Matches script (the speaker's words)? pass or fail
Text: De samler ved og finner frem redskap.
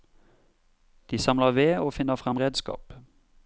pass